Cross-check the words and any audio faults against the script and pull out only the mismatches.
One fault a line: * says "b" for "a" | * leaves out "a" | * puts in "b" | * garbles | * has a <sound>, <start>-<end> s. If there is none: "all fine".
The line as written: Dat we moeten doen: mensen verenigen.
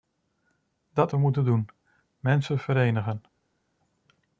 all fine